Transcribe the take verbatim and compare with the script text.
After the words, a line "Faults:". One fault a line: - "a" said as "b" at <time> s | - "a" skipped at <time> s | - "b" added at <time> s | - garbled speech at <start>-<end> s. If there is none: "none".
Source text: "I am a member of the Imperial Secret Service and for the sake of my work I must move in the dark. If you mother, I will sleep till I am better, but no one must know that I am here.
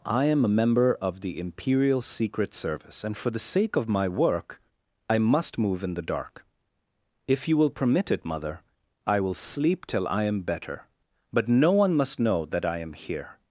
"I am a member of the Imperial Secret Service and for the sake of my work I must move in the dark. If you will permit it, mother, I will sleep till I am better, but no one must know that I am here.
Faults:
- "will permit it" added at 7.5 s